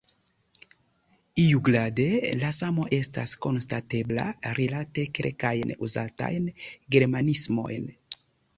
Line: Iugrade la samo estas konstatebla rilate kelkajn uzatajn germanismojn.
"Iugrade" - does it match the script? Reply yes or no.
yes